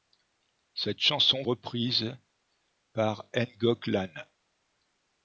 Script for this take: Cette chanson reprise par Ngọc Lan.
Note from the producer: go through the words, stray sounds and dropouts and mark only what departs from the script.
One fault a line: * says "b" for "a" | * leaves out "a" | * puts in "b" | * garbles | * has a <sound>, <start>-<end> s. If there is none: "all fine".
all fine